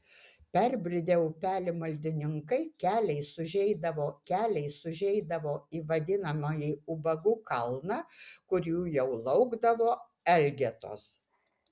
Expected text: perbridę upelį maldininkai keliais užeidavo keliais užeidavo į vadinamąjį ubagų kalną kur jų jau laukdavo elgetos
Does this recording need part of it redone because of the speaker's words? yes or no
no